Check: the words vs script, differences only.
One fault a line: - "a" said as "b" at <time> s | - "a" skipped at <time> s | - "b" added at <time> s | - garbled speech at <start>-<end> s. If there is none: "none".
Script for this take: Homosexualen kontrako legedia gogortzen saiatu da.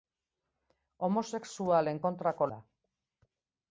- "legedia gogortzen saiatu" skipped at 2.5 s